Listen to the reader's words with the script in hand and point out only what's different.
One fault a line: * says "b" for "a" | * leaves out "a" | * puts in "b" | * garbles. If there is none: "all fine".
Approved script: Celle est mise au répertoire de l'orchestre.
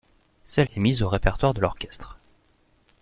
all fine